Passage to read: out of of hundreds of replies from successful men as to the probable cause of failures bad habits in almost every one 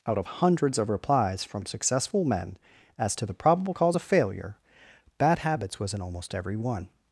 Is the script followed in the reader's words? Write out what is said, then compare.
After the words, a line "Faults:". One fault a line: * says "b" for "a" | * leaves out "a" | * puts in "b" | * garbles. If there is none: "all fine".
out of hundreds of replies from successful men as to the probable cause of failure bad habits was in almost every one
Faults:
* leaves out "of"
* says "failure" for "failures"
* puts in "was"